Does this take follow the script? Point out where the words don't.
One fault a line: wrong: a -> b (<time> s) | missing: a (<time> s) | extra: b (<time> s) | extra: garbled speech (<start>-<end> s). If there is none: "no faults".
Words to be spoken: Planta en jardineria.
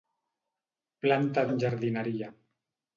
no faults